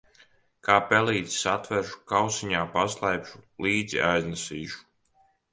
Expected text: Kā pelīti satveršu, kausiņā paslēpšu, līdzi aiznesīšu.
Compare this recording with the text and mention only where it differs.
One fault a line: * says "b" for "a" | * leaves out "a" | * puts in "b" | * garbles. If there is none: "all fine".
all fine